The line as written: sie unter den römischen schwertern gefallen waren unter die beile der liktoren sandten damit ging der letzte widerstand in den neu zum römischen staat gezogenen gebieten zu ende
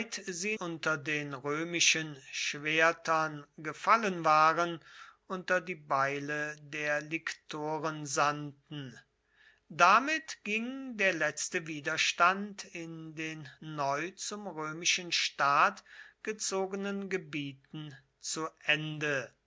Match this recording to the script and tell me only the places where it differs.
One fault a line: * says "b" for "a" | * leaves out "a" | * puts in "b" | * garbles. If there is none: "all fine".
all fine